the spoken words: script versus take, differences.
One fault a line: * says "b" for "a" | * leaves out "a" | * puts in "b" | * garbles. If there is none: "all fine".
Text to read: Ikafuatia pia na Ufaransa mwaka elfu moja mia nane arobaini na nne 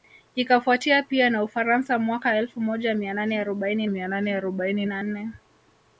* puts in "mia nane arobaini"